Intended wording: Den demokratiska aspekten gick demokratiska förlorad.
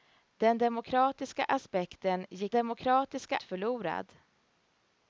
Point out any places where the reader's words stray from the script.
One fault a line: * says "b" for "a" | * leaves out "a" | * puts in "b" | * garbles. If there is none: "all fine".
all fine